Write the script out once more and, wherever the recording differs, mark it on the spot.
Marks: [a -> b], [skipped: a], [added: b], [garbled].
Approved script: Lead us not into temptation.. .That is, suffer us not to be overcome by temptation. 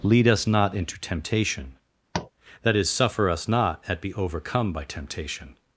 Lead us not into temptation.. .That is, suffer us not [to -> at] be overcome by temptation.